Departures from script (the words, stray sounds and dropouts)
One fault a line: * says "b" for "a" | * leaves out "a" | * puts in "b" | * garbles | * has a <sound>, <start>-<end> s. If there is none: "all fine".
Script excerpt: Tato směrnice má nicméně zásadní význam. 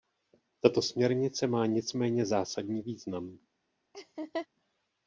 * has a laugh, 3.9-4.5 s